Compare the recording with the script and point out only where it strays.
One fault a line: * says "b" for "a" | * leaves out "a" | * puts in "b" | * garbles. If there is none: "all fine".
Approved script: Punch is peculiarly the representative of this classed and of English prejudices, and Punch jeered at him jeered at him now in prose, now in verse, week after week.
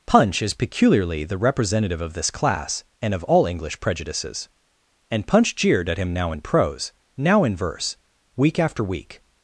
* says "class" for "classed"
* puts in "all"
* leaves out "jeered at him"